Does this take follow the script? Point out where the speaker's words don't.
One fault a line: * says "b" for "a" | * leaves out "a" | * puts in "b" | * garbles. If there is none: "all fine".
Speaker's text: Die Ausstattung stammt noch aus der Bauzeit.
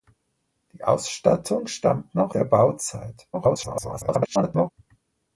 * leaves out "aus"
* garbles